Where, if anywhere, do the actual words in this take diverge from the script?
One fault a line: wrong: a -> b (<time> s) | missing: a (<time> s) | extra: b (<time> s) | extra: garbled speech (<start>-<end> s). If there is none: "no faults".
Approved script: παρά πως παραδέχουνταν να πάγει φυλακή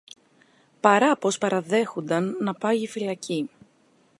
no faults